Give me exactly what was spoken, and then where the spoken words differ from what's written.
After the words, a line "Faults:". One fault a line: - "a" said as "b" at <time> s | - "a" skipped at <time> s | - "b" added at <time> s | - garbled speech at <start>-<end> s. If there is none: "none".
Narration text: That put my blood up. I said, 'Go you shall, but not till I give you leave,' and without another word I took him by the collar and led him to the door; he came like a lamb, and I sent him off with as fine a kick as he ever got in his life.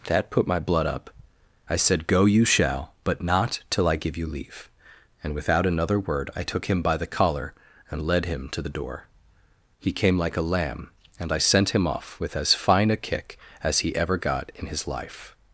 That put my blood up. I said, 'Go you shall, but not till I give you leave,' and without another word I took him by the collar and led him to the door; he came like a lamb, and I sent him off with as fine a kick as he ever got in his life.
Faults:
none